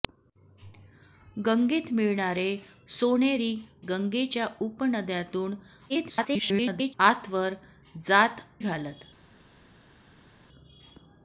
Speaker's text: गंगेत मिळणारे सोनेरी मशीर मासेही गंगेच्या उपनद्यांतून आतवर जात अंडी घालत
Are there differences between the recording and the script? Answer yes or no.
yes